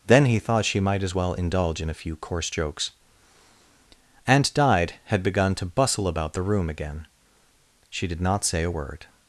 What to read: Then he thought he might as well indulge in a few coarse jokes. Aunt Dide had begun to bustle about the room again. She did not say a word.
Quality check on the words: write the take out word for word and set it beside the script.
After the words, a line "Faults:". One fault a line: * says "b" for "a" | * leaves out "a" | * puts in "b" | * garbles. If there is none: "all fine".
Then he thought she might as well indulge in a few coarse jokes. Aunt Dide had begun to bustle about the room again. She did not say a word.
Faults:
* says "she" for "he"